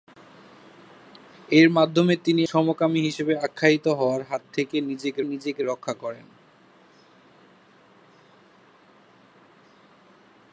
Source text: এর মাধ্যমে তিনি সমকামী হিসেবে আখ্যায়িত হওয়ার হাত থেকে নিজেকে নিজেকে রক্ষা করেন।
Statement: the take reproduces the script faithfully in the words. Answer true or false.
true